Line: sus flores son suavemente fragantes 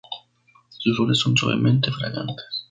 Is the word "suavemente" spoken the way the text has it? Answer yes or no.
yes